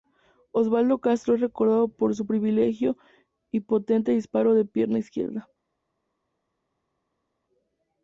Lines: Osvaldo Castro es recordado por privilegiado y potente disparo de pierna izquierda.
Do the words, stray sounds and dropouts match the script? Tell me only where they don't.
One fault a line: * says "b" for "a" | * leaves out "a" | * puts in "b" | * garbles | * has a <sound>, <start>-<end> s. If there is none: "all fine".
* puts in "su"